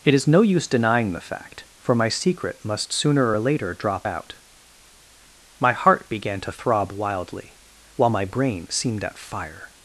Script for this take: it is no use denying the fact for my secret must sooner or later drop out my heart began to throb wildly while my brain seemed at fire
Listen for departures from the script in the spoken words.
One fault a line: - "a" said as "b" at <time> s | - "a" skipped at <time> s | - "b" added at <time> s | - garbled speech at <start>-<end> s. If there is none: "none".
none